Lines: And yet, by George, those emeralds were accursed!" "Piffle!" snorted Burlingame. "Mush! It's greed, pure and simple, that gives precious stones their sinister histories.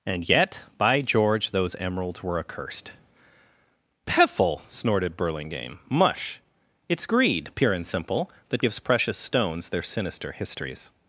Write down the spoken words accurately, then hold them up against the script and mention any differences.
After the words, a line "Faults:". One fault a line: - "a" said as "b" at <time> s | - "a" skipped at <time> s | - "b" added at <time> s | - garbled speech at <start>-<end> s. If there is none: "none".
And yet, by George, those emeralds were accursed!" "Piffle!" snorted Burlingame. "Mush! It's greed, pure and simple, that gives precious stones their sinister histories.
Faults:
none